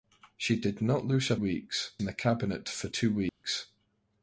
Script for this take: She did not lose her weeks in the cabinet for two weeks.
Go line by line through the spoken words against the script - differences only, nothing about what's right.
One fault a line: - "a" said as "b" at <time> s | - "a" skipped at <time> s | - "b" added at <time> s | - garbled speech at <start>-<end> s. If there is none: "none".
none